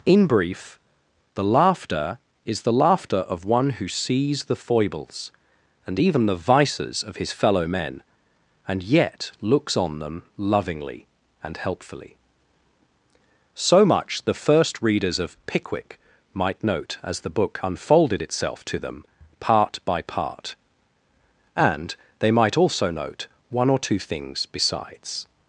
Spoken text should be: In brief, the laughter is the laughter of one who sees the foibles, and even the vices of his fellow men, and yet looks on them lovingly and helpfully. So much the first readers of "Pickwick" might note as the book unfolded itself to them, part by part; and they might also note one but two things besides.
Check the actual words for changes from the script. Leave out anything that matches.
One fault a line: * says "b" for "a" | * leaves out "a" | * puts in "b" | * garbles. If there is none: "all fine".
* says "or" for "but"